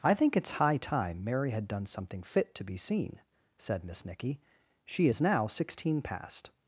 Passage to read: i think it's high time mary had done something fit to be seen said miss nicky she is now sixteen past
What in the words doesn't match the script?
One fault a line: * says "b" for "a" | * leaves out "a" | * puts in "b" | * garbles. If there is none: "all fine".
all fine